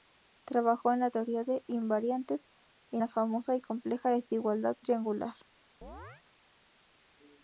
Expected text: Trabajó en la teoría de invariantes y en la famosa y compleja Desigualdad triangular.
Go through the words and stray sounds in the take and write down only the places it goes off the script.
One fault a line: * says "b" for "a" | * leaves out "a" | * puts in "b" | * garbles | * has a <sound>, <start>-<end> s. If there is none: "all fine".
* leaves out "en"
* has a chirp, 5.8-6.2 s